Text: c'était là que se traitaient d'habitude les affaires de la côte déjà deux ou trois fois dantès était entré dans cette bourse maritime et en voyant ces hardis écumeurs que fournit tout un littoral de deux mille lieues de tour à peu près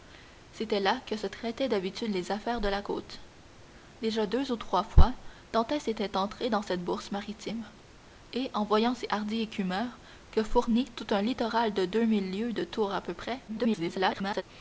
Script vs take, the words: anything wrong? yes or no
yes